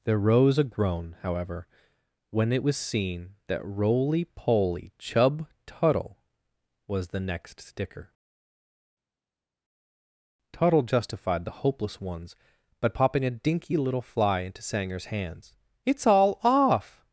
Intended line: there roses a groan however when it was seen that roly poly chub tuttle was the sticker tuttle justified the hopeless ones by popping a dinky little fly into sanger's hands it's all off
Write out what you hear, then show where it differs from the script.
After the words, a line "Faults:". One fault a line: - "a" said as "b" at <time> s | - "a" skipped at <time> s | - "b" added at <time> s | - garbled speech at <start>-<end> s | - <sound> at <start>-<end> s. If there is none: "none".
there rose a groan however when it was seen that roly poly chub tuttle was the next sticker tuttle justified the hopeless ones by popping a dinky little fly into sanger's hands it's all off
Faults:
- "roses" said as "rose" at 0.2 s
- "next" added at 7.2 s